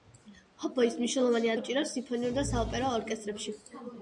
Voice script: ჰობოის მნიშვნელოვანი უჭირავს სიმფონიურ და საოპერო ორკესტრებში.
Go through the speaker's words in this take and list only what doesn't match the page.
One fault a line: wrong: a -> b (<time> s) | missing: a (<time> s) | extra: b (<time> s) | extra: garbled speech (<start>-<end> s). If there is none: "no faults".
no faults